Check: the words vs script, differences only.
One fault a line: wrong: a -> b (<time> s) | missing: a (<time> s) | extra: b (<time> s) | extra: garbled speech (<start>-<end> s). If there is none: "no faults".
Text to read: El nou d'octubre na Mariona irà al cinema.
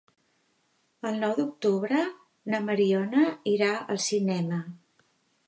no faults